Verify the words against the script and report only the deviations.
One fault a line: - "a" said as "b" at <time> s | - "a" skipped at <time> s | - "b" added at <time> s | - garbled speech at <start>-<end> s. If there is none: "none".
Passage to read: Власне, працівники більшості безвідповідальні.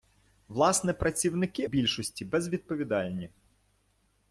none